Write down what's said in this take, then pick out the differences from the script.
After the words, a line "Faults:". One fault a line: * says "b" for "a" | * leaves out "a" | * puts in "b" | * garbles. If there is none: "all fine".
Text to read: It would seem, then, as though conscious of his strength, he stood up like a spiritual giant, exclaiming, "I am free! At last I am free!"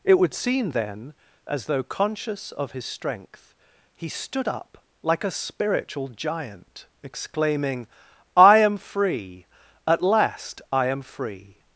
It would seem, then, as though conscious of his strength, he stood up like a spiritual giant, exclaiming, "I am free! At last I am free!"
Faults:
all fine